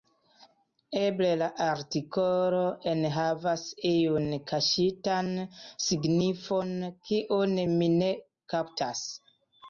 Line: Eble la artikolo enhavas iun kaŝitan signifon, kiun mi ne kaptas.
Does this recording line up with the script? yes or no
yes